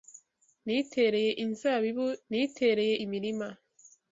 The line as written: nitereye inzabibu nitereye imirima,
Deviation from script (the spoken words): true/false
false